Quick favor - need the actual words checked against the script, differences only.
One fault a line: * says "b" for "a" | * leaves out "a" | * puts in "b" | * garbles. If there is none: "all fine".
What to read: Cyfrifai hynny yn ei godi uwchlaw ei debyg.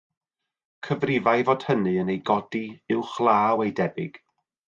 * puts in "fod"